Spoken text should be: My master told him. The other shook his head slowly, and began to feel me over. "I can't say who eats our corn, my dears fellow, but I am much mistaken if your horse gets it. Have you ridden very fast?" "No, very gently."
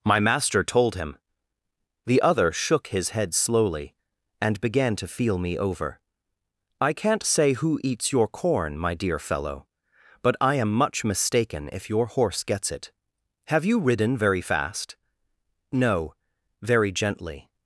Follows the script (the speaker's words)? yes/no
no